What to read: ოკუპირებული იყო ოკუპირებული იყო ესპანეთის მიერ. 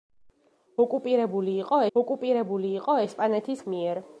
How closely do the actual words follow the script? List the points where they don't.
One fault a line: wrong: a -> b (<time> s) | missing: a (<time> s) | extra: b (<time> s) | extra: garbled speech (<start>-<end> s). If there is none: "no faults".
no faults